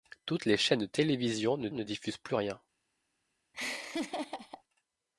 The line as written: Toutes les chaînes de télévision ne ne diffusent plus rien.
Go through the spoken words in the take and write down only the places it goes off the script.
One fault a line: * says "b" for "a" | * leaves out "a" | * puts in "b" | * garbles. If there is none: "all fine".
all fine